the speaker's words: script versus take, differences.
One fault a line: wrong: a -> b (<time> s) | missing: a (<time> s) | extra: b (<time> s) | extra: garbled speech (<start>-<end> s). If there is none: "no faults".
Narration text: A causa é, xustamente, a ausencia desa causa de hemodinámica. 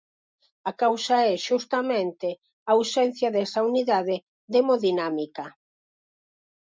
wrong: causa -> unidade (3.7 s)